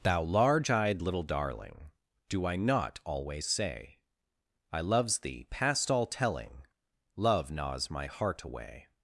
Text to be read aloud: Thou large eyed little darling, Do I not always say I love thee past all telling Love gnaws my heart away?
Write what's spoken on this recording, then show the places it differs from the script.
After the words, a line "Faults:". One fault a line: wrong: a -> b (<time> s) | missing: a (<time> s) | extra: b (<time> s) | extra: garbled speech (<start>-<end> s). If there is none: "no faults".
Thou large eyed little darling, Do I not always say I loves thee past all telling Love gnaws my heart away?
Faults:
wrong: love -> loves (4.8 s)